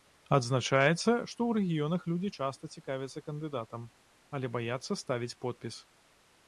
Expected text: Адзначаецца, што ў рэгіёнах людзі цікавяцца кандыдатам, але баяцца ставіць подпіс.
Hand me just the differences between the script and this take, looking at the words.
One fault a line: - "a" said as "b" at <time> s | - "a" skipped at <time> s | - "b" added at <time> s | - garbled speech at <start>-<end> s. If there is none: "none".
- "часта" added at 2.4 s